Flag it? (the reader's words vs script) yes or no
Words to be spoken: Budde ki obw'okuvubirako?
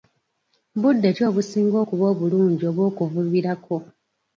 yes